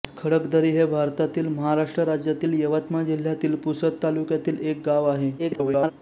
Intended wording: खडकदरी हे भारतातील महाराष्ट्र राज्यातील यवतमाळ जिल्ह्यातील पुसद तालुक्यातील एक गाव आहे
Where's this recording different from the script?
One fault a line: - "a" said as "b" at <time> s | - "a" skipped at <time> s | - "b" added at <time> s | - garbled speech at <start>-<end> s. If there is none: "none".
- garbled speech at 5.4-5.9 s